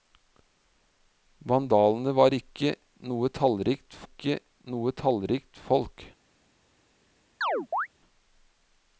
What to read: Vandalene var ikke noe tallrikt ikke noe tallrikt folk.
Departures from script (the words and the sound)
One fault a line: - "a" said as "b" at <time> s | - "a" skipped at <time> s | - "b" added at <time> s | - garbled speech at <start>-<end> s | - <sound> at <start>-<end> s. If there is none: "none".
- chirp at 7.4-7.9 s